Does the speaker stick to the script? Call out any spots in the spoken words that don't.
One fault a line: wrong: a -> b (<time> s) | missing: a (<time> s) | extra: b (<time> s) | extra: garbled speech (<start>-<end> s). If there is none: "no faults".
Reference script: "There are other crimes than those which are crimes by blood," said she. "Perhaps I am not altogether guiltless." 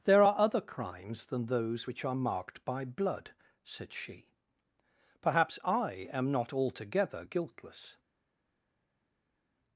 wrong: crimes -> marked (2.1 s)